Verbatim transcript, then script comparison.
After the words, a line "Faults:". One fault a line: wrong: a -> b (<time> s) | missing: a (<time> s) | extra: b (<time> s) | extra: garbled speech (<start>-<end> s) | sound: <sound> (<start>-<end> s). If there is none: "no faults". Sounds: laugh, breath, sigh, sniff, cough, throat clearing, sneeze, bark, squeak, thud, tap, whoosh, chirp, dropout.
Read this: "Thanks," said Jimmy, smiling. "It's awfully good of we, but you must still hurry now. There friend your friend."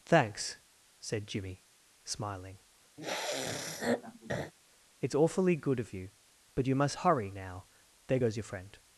"Thanks," said Jimmy, smiling. "It's awfully good of you, but you must hurry now. There goes your friend."
Faults:
sound: sniff (3.0-4.5 s)
wrong: we -> you (5.9 s)
missing: still (7.1 s)
wrong: friend -> goes (8.2 s)